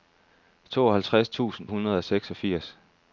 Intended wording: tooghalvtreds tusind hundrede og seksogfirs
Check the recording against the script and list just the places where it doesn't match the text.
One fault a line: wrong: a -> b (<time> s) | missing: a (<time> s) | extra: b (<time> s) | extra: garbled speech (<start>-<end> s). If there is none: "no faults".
no faults